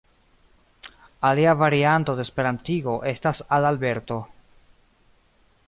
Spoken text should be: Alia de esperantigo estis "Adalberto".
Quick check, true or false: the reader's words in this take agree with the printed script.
false